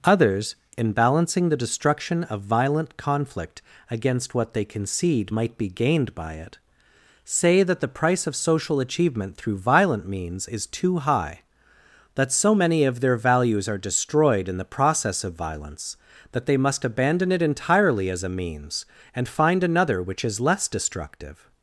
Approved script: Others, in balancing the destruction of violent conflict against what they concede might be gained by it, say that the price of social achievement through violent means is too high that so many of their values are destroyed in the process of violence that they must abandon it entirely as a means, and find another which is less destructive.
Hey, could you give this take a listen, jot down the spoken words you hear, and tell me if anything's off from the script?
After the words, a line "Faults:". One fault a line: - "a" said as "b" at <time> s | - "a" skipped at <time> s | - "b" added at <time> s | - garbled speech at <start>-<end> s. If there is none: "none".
Others, in balancing the destruction of violent conflict against what they concede might be gained by it, say that the price of social achievement through violent means is too high that so many of their values are destroyed in the process of violence that they must abandon it entirely as a means, and find another which is less destructive.
Faults:
none